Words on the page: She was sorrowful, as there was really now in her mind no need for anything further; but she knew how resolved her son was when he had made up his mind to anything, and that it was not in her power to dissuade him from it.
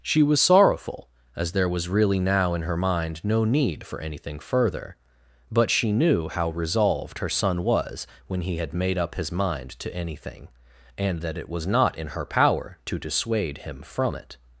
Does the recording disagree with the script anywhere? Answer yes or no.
no